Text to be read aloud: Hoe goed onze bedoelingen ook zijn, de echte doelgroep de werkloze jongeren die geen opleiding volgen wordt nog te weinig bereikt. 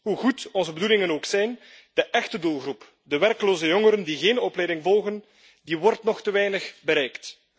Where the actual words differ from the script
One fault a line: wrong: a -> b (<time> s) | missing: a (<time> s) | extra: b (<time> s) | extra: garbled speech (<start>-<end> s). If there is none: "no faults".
no faults